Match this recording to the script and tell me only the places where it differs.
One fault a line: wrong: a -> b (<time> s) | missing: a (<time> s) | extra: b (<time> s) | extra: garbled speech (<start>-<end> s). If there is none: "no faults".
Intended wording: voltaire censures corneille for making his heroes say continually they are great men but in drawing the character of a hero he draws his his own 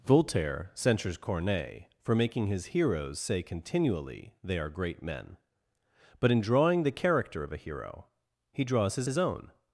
no faults